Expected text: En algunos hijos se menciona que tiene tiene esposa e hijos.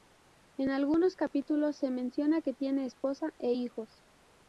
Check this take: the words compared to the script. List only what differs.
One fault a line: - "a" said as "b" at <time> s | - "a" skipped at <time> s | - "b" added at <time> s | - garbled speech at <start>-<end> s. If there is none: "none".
- "hijos" said as "capítulos" at 1.1 s
- "tiene" skipped at 2.9 s